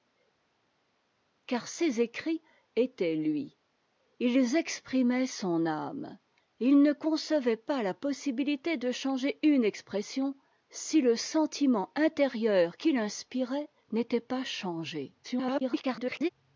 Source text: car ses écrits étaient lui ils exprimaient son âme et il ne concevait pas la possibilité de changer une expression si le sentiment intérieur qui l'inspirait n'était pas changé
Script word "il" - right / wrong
right